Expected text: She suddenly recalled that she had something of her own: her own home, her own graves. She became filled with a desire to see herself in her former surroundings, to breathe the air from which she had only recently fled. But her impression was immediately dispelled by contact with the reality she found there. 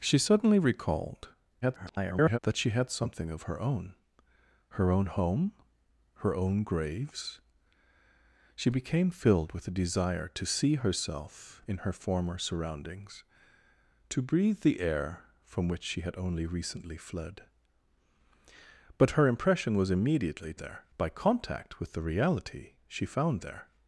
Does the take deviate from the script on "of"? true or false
false